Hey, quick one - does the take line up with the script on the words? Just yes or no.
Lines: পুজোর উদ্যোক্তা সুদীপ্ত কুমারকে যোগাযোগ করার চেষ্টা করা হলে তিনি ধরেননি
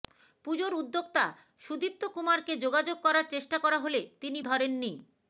yes